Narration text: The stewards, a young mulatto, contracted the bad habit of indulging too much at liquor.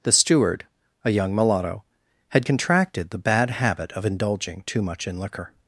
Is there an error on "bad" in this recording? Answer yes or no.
no